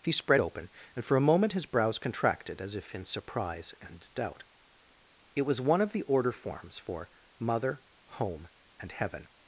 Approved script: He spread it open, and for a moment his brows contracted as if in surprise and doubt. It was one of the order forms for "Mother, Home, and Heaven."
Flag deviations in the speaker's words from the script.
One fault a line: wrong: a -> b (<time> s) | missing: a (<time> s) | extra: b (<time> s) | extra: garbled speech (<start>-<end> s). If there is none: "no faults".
missing: it (0.4 s)